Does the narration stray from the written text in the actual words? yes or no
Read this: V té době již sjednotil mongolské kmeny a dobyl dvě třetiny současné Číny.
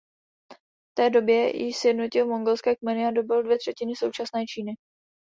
no